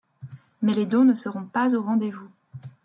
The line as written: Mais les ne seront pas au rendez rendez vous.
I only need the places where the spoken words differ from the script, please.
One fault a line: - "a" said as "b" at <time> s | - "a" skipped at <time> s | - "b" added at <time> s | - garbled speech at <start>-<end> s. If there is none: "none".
- "dons" added at 0.9 s
- "rendez" skipped at 2.1 s